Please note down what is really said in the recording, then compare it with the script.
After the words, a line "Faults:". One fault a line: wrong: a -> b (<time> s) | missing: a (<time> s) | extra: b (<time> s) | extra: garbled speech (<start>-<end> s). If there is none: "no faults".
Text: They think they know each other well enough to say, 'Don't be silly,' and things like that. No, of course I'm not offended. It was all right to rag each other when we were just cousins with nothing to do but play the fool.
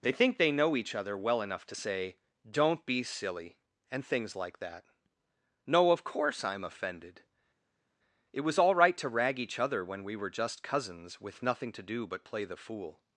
They think they know each other well enough to say, 'Don't be silly,' and things like that. No, of course I'm offended. It was all right to rag each other when we were just cousins with nothing to do but play the fool.
Faults:
missing: not (6.6 s)